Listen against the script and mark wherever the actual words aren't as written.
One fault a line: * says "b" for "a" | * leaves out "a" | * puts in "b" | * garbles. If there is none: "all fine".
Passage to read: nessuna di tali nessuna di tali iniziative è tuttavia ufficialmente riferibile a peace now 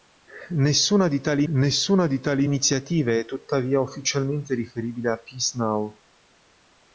all fine